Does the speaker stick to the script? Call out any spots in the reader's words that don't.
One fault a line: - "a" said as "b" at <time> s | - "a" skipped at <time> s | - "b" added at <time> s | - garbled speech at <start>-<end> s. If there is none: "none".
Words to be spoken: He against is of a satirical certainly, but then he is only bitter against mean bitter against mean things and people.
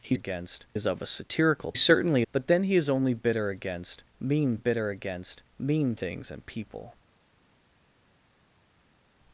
none